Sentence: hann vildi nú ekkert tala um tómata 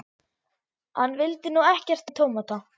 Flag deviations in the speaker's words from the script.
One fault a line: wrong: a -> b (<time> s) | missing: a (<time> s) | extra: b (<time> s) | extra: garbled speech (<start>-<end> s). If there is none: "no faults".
missing: tala (2.1 s)